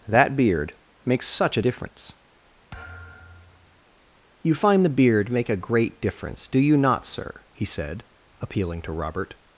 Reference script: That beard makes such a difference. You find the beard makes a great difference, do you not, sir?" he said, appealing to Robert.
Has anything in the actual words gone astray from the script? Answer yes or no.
yes